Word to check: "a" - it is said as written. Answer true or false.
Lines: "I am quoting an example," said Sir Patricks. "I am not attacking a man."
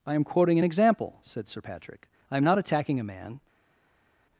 true